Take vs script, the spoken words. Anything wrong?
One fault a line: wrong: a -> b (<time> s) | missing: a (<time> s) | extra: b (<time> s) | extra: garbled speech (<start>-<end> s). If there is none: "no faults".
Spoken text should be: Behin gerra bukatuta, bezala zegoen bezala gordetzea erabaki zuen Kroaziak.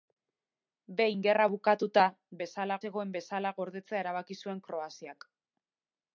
no faults